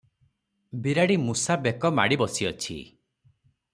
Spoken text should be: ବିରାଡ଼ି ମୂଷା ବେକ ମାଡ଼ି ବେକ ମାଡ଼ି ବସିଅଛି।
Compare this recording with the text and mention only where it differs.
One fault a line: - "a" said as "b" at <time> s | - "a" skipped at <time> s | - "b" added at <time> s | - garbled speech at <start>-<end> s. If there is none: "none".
- "ବେକ ମାଡ଼ି" skipped at 2.2 s